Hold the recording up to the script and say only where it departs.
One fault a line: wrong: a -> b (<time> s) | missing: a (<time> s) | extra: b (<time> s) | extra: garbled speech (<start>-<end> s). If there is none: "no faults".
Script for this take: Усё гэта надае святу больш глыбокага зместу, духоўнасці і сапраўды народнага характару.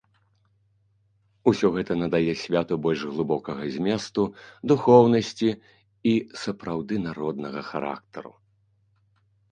no faults